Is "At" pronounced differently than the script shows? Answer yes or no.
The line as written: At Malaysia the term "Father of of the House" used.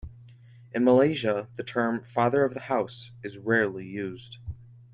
yes